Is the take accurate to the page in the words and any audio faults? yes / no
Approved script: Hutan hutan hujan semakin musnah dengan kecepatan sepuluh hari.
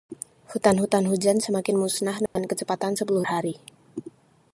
no